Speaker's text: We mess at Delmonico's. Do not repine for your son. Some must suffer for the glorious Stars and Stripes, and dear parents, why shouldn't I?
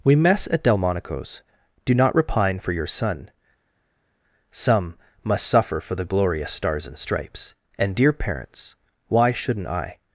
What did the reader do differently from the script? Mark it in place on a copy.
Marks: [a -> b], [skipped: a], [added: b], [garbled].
We mess at Delmonico's. Do not repine for your son. Some must suffer for the glorious Stars and Stripes, and dear parents, why shouldn't I?